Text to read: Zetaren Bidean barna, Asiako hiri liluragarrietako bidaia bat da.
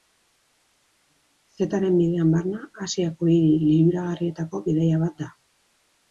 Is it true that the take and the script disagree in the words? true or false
false